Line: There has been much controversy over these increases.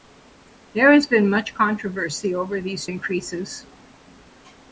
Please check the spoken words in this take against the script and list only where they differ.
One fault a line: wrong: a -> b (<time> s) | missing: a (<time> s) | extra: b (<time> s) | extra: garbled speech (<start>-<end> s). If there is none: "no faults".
no faults